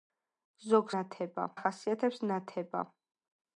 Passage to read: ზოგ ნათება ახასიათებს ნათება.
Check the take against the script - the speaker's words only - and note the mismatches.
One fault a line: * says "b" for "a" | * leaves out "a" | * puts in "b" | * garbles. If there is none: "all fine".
all fine